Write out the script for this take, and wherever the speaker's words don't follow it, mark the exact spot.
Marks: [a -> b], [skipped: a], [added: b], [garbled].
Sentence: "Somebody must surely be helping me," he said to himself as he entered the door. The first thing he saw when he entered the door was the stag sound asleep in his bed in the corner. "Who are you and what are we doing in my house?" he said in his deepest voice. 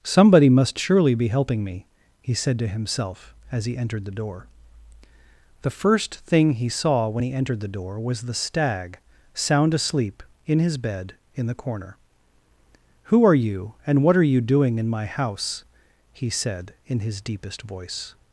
"Somebody must surely be helping me," he said to himself as he entered the door. The first thing he saw when he entered the door was the stag sound asleep in his bed in the corner. "Who are you and what are [we -> you] doing in my house?" he said in his deepest voice.